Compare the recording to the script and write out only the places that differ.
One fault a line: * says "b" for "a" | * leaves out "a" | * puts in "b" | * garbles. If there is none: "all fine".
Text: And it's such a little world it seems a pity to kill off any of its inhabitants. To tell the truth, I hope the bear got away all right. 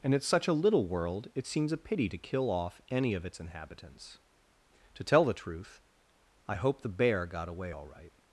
all fine